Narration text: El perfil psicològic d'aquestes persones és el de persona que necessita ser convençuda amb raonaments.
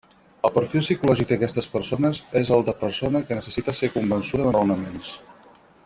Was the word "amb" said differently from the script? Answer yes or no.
yes